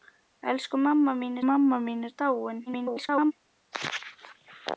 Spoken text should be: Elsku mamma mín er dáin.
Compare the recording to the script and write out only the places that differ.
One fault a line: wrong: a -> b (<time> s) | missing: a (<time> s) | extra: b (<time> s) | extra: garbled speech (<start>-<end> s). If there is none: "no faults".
extra: mamma mín (1.5 s)
extra: garbled speech (2.7-3.3 s)